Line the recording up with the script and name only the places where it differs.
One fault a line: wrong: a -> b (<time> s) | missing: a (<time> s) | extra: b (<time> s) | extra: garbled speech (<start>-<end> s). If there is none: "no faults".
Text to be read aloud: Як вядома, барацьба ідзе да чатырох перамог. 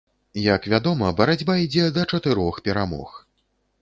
no faults